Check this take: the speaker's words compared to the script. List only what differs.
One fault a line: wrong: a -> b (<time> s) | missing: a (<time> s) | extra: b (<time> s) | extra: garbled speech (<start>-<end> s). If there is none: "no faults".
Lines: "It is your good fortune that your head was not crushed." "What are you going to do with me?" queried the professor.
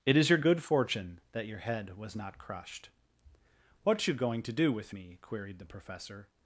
missing: are (4.1 s)